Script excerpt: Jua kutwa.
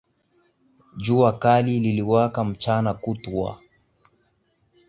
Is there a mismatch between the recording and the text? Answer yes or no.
yes